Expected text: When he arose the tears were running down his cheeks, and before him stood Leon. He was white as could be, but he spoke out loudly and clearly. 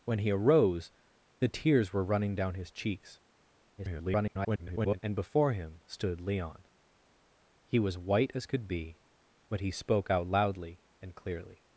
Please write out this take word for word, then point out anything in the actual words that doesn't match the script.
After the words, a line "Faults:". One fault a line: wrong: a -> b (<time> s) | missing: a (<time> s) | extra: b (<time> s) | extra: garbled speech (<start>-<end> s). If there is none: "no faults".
When he arose the tears were running down his cheeks, [garbled] and before him stood Leon. He was white as could be, but he spoke out loudly and clearly.
Faults:
extra: garbled speech (3.8-5.0 s)